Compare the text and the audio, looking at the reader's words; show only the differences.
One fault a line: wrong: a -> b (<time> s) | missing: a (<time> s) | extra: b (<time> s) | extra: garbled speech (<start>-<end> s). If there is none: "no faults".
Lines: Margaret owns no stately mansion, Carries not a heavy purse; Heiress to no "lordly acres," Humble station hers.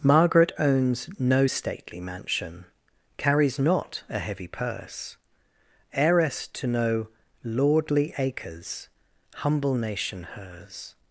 wrong: station -> nation (9.7 s)